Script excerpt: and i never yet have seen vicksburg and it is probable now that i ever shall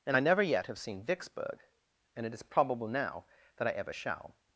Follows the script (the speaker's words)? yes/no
yes